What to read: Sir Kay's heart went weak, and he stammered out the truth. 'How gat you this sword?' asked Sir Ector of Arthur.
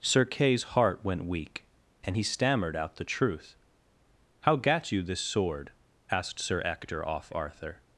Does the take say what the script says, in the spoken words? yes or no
no